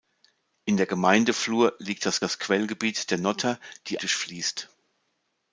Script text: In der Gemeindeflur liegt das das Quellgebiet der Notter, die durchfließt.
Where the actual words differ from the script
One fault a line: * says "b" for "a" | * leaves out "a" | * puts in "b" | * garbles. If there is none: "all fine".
all fine